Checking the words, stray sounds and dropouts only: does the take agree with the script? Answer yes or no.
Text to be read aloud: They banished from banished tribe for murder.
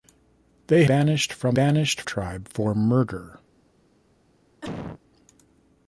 no